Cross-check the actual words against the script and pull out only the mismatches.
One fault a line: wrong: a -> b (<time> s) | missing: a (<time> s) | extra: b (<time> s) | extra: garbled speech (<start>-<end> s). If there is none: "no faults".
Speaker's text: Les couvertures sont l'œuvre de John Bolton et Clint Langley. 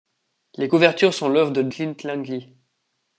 missing: John Bolton et (1.7 s)